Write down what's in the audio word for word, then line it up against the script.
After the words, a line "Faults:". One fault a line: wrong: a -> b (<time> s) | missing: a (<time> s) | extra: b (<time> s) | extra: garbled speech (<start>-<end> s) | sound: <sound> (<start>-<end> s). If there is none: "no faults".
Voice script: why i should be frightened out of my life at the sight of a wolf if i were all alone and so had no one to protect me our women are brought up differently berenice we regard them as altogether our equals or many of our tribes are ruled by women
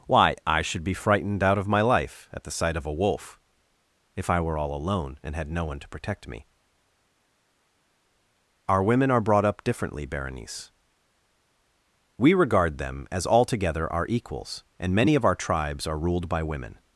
why i should be frightened out of my life at the sight of a wolf if i were all alone and had no one to protect me our women are brought up differently berenice we regard them as altogether our equals and many of our tribes are ruled by women
Faults:
missing: so (5.3 s)
wrong: or -> and (14.8 s)